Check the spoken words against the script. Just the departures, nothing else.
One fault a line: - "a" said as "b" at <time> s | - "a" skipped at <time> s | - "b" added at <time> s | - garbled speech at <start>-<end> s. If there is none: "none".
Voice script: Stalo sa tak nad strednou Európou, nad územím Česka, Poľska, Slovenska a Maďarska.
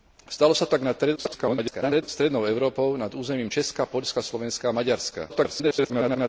- garbled speech at 1.2-2.0 s
- garbled speech at 5.3-6.3 s